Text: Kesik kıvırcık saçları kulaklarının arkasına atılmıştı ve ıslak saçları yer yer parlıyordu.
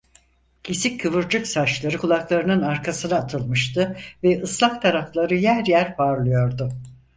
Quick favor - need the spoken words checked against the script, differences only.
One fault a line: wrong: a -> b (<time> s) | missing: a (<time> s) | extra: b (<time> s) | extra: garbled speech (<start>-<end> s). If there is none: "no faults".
wrong: saçları -> tarafları (4.8 s)